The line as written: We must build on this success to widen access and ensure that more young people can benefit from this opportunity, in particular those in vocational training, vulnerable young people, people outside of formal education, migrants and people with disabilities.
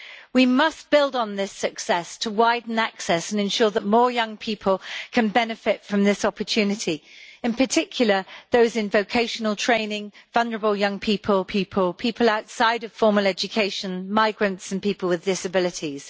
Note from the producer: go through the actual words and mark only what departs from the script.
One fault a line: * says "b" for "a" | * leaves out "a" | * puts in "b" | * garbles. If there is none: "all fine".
* puts in "people"